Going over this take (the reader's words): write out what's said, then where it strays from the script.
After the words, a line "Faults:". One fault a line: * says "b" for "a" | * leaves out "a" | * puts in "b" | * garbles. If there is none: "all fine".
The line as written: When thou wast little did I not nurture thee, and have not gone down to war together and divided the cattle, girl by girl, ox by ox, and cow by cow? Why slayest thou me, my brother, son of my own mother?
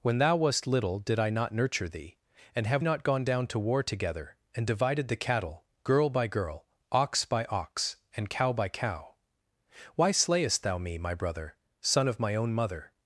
When thou wast little did I not nurture thee, and have not gone down to war together and divided the cattle, girl by girl, ox by ox, and cow by cow? Why slayest thou me, my brother, son of my own mother?
Faults:
all fine